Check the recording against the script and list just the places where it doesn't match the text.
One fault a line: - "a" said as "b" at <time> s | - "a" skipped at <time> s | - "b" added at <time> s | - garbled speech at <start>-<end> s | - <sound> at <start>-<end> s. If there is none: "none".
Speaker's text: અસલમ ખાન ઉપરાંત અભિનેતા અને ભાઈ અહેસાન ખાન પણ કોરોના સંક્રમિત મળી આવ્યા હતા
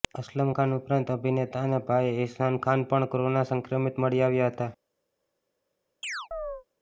- chirp at 6.0-6.6 s